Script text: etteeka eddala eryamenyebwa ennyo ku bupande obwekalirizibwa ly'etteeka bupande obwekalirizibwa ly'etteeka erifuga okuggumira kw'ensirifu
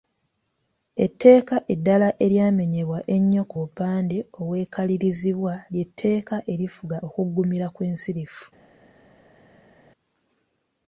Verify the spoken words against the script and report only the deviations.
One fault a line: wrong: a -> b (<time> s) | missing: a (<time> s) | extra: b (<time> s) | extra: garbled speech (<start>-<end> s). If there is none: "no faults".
missing: bupande obwekalirizibwa ly'etteeka (6.4 s)